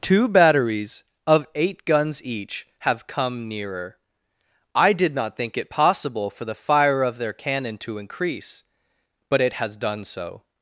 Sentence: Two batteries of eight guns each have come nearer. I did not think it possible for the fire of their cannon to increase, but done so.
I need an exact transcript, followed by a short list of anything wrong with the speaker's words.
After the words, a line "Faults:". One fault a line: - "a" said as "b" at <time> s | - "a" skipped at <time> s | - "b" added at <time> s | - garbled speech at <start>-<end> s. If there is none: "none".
Two batteries of eight guns each have come nearer. I did not think it possible for the fire of their cannon to increase, but it has done so.
Faults:
- "it has" added at 9.4 s